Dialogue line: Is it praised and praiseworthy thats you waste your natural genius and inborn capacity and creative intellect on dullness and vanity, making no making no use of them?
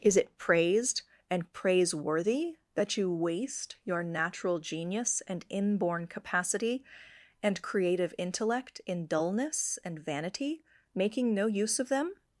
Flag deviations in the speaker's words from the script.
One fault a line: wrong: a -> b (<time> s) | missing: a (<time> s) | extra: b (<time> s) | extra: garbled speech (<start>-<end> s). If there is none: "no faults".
wrong: thats -> that (2.7 s)
wrong: on -> in (8.8 s)
missing: making no (11.4 s)